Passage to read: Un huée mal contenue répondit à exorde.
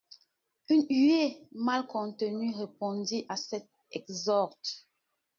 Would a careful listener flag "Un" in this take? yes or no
yes